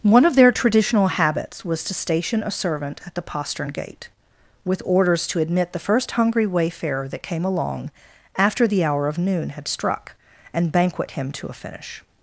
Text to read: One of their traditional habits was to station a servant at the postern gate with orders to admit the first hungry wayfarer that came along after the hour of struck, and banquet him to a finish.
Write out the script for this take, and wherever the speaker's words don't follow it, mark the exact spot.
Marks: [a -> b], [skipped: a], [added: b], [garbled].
One of their traditional habits was to station a servant at the postern gate with orders to admit the first hungry wayfarer that came along after the hour of [added: noon had] struck, and banquet him to a finish.